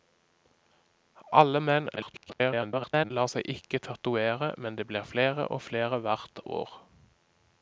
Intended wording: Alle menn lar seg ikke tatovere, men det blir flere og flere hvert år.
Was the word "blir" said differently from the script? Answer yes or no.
no